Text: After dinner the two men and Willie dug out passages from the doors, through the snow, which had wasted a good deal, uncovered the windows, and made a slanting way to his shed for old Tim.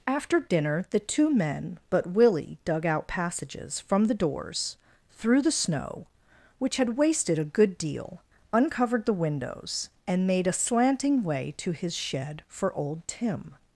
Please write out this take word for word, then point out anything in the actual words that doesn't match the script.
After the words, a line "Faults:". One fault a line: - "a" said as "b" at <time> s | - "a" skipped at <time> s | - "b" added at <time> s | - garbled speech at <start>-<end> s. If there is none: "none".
After dinner the two men but Willie dug out passages from the doors, through the snow, which had wasted a good deal, uncovered the windows, and made a slanting way to his shed for old Tim.
Faults:
- "and" said as "but" at 1.9 s